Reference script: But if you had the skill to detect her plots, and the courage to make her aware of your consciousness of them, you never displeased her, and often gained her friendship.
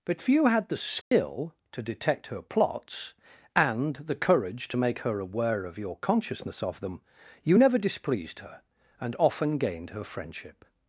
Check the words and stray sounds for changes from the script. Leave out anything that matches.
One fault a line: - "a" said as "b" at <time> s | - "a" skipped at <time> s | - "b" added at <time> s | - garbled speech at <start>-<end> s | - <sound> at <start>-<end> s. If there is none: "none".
- "if you" said as "few" at 0.2 s
- dropout at 1.0-1.1 s